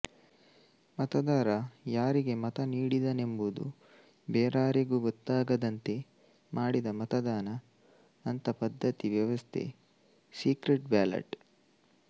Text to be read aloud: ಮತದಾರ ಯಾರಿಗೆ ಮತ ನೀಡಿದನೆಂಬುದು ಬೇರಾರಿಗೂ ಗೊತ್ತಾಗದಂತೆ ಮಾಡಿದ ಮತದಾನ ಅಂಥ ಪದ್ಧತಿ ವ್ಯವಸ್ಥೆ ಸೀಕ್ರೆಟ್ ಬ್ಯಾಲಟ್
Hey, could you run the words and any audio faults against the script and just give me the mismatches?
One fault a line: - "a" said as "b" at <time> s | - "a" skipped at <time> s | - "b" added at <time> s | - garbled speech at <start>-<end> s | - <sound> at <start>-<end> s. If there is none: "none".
none